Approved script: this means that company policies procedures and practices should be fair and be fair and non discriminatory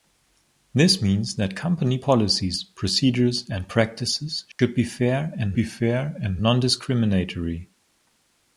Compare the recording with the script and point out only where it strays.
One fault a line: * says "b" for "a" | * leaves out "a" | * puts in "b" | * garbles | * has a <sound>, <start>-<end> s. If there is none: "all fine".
* has a dropout, 4.5-4.6 s